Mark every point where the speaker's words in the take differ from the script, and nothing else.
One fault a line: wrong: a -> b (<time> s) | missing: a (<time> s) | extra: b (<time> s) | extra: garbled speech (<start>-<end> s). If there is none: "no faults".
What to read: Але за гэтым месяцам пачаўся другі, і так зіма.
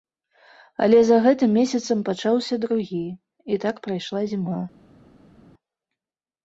extra: прайшла (3.9 s)